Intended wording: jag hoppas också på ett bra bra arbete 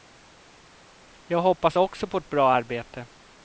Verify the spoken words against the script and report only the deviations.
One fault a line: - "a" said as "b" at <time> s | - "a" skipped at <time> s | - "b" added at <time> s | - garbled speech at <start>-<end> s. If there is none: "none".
- "bra" skipped at 2.5 s